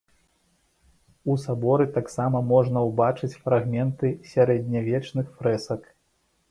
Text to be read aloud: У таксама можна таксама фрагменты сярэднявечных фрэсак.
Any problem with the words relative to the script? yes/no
yes